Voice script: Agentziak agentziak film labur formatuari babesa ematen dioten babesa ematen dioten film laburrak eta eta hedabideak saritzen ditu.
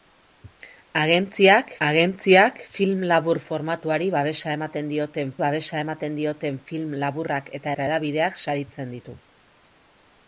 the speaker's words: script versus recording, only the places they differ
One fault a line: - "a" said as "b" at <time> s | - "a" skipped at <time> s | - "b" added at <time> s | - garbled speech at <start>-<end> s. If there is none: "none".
none